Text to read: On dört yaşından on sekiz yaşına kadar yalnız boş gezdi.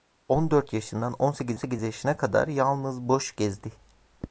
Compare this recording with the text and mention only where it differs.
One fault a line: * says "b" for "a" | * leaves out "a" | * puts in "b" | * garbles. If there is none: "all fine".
* puts in "sekiz"